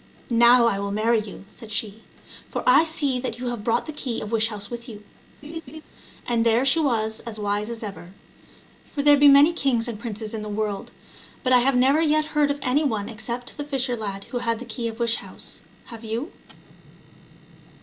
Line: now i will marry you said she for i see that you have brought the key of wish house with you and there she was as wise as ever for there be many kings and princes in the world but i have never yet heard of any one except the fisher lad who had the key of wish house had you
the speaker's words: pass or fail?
fail